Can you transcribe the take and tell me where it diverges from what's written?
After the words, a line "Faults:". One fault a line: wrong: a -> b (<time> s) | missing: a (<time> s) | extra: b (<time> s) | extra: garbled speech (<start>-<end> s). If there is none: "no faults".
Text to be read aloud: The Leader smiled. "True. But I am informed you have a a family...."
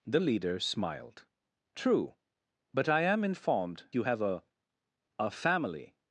The Leader smiled. "True. But I am informed you have a a family...."
Faults:
no faults